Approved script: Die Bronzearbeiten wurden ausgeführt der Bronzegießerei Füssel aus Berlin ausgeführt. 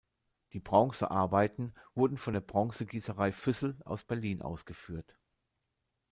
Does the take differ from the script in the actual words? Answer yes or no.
yes